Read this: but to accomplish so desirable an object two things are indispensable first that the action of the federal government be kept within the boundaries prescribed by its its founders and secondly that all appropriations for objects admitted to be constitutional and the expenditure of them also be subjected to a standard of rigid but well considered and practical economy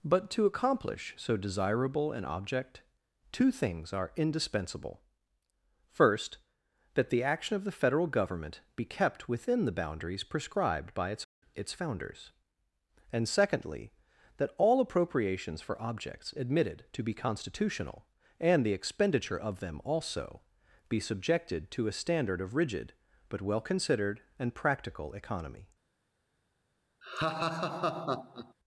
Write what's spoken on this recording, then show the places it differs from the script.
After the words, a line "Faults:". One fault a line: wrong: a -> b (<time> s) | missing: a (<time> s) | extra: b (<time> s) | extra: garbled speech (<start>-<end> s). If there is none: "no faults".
but to accomplish so desirable an object two things are indispensable first that the action of the federal government be kept within the boundaries prescribed by its its founders and secondly that all appropriations for objects admitted to be constitutional and the expenditure of them also be subjected to a standard of rigid but well considered and practical economy
Faults:
no faults